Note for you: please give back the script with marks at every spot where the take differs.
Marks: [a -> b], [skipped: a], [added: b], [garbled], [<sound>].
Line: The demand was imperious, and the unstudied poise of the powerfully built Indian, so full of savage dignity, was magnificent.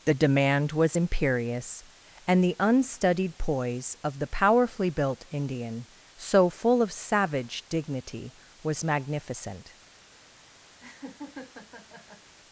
The demand was imperious, and the unstudied poise of the powerfully built Indian, so full of savage dignity, was magnificent. [laugh]